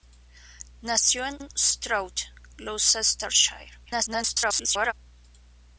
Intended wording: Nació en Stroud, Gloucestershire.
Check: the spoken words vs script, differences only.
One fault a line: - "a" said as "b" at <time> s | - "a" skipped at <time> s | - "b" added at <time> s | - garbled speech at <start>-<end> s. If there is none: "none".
- "en" added at 1.4 s
- garbled speech at 3.9-4.9 s